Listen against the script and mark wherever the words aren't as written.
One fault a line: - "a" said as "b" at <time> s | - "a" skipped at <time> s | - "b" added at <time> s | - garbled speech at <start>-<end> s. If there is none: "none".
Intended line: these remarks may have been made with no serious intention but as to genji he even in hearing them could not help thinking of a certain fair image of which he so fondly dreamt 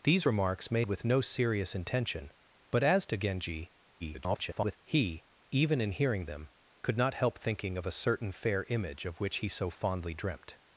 - "have been made" skipped at 0.8 s
- garbled speech at 4.0-4.8 s